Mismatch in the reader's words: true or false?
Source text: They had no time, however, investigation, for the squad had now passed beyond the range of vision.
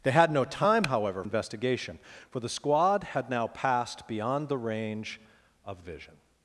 false